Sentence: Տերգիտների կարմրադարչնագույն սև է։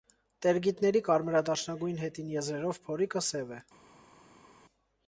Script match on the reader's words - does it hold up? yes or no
no